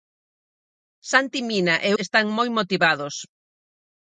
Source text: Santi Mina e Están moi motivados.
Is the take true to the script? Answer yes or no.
yes